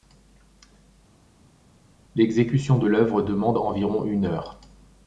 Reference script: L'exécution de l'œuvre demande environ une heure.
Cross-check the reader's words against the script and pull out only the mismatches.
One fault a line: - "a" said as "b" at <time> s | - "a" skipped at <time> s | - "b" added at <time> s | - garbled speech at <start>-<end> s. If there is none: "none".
none